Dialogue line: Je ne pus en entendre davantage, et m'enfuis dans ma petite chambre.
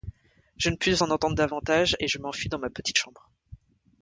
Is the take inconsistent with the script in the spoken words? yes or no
yes